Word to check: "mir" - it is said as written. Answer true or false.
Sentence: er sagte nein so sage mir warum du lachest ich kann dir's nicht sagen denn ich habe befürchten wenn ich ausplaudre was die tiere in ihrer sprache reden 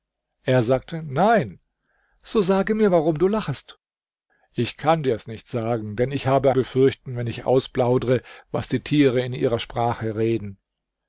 true